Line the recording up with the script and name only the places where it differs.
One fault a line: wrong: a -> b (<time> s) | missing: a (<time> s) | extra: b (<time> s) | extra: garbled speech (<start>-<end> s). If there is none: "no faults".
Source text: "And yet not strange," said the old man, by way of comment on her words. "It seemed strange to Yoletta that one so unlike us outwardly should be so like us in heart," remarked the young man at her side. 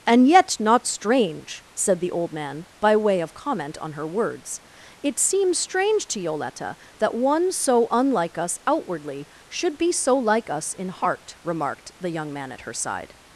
wrong: seemed -> seems (5.2 s)